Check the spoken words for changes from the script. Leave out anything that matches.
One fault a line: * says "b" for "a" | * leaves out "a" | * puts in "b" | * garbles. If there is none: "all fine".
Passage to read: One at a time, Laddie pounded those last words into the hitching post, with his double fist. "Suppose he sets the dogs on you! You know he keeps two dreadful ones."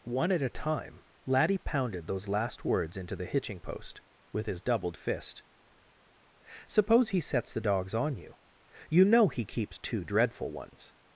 * says "doubled" for "double"